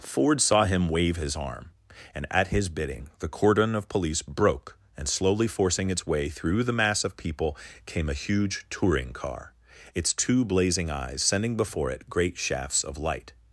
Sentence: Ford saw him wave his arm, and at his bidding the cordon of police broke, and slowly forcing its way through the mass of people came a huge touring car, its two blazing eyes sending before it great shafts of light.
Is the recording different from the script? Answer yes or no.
no